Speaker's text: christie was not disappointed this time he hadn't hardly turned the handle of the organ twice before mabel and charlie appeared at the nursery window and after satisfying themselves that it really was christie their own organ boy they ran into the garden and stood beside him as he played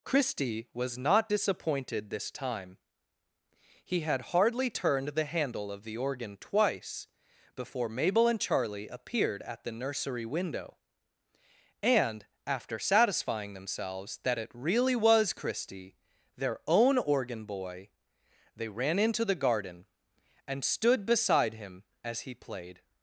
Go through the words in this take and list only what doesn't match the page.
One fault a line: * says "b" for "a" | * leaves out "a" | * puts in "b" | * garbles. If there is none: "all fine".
* says "had" for "hadn't"